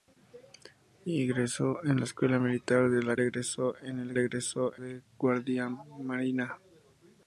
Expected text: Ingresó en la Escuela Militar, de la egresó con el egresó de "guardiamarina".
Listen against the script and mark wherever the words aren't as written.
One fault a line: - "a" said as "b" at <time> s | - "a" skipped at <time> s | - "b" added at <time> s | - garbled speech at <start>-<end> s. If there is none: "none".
none